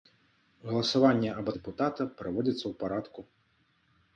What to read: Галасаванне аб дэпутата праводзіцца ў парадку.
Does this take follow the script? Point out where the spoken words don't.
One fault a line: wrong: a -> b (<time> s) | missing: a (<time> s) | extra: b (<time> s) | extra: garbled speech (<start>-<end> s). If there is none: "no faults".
no faults